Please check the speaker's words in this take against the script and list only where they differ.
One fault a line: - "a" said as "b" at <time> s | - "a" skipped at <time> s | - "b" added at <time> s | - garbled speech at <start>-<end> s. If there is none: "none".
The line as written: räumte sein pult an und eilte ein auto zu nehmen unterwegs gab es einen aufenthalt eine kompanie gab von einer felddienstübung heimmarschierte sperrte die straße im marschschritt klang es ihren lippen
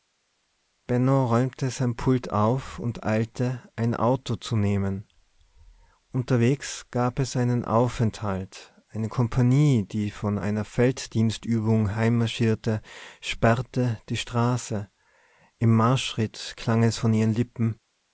- "an" said as "auf" at 2.3 s
- "gab" said as "die" at 9.9 s
- "von" added at 17.0 s